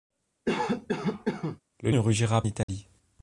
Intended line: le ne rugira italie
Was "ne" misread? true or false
false